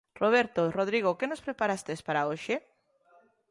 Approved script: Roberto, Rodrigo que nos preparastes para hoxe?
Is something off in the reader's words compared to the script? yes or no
no